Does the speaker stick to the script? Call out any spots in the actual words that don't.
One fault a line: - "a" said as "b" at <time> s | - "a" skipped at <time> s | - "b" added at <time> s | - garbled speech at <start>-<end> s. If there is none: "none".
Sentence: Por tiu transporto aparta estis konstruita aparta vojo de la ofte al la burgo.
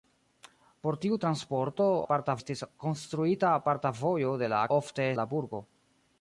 none